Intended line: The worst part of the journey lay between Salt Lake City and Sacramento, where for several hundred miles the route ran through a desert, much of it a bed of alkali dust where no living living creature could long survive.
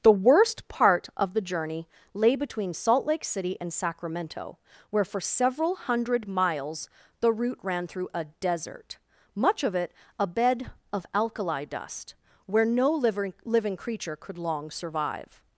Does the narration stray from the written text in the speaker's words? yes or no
no